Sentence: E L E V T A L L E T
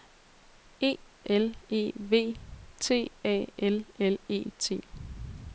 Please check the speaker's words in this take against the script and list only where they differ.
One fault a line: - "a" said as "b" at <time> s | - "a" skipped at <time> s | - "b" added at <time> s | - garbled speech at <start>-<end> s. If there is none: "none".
none